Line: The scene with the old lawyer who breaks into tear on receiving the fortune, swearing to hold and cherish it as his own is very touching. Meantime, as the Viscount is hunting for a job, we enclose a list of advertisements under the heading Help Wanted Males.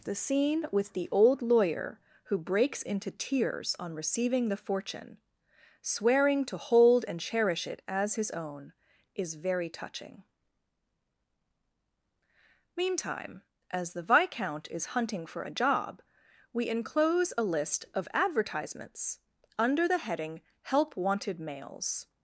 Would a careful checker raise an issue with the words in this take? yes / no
yes